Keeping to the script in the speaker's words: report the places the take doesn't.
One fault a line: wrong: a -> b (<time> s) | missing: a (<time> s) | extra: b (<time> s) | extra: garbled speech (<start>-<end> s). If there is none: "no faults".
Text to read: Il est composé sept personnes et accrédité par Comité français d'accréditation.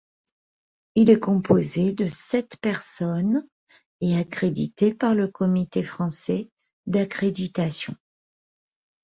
extra: de (1.9 s)
extra: le (5.1 s)